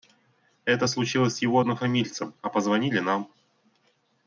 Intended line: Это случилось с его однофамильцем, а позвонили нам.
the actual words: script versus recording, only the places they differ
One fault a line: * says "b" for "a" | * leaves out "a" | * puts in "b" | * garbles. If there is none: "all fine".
all fine